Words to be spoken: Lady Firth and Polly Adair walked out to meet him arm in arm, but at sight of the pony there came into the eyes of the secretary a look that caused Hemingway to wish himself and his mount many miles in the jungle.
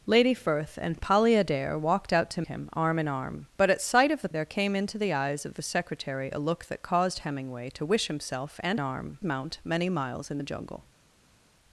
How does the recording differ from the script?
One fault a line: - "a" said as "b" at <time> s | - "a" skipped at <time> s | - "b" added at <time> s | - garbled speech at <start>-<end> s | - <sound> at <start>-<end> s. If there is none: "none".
- "meet" skipped at 2.4 s
- "pony" skipped at 4.3 s
- "his" said as "arm" at 8.8 s